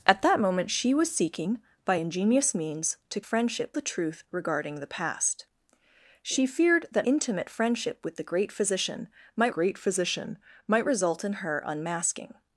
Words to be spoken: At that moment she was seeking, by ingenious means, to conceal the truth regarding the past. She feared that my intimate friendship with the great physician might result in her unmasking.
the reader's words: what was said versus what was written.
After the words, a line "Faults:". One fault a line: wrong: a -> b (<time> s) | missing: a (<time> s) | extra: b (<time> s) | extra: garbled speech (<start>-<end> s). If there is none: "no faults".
At that moment she was seeking, by ingenious means, to friendship the truth regarding the past. She feared that intimate friendship with the great physician might great physician might result in her unmasking.
Faults:
wrong: conceal -> friendship (3.2 s)
missing: my (7.1 s)
extra: great physician might (9.5 s)